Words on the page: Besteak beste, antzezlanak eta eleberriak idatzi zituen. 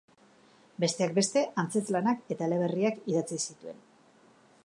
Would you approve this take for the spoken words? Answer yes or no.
yes